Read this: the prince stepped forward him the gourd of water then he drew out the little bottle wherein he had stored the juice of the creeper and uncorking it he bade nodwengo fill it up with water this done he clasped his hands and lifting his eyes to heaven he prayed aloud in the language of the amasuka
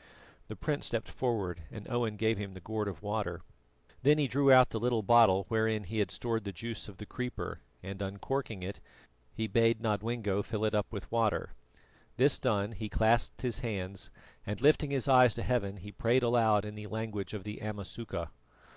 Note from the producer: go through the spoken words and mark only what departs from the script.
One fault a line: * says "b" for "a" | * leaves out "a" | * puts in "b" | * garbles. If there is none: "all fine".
* puts in "and owen gave"